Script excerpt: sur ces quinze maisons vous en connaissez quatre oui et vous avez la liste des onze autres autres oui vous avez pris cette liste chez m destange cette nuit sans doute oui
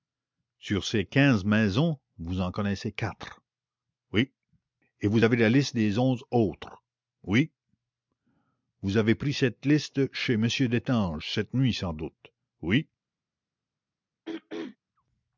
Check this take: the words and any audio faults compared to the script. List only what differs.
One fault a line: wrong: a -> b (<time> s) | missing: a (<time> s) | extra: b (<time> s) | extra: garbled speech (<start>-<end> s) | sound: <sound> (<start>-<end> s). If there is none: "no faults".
missing: autres (6.8 s)
sound: throat clearing (14.3-14.8 s)